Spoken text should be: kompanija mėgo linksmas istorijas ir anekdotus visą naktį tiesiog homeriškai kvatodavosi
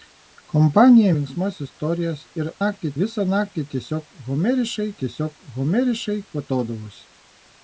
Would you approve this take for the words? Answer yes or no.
no